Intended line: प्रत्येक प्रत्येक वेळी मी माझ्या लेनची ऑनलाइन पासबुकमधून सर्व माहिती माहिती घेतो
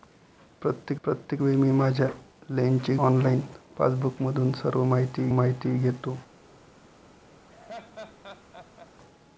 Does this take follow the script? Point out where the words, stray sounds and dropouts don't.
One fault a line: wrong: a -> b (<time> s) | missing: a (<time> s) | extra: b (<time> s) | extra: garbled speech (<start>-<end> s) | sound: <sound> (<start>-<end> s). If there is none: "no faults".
sound: laugh (7.5-8.9 s)